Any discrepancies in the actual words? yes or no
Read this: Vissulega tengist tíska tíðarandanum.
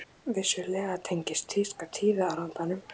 no